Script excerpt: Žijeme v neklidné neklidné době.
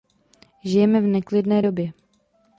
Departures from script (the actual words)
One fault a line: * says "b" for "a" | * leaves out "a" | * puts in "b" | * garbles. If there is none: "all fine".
* leaves out "neklidné"